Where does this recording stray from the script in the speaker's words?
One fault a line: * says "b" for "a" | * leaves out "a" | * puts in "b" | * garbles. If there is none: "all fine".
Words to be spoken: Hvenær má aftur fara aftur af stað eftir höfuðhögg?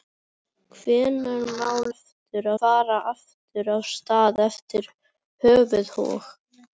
all fine